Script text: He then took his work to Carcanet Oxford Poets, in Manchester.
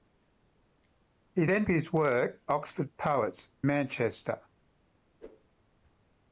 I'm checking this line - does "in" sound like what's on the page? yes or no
no